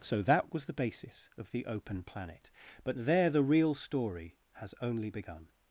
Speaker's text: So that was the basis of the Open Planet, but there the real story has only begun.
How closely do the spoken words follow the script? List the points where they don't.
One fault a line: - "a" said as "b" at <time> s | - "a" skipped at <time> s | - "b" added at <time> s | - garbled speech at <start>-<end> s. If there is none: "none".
none